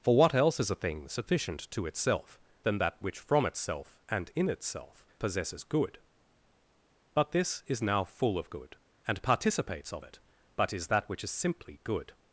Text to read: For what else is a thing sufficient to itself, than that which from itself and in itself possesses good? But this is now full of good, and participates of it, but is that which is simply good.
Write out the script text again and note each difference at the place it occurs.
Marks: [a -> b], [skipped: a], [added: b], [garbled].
For what else is a thing sufficient to itself, than that which from itself and in itself possesses good? But this is now full of good, and participates of it, but is that which is simply good.